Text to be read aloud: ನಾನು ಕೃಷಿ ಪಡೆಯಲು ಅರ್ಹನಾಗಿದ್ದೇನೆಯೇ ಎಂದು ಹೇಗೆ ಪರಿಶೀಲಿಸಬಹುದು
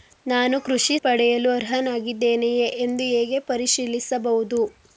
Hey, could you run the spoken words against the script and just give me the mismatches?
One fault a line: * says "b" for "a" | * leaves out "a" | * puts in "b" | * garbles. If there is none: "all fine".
all fine